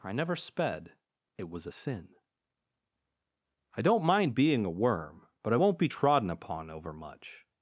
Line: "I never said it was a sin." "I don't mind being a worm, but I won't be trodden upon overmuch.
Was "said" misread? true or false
true